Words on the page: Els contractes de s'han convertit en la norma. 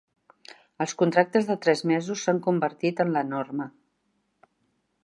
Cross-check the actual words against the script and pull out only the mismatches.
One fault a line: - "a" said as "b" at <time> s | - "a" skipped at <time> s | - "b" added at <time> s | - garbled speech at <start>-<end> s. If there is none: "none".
- "tres mesos" added at 1.6 s